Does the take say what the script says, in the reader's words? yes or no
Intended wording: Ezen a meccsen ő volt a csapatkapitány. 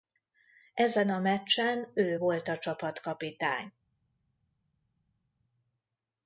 yes